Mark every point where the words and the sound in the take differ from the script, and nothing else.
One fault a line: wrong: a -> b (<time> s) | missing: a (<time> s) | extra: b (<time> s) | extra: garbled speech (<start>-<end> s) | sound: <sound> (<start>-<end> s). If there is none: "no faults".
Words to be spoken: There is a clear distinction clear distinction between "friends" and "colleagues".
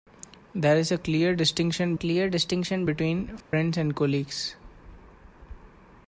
sound: dropout (3.4-3.5 s)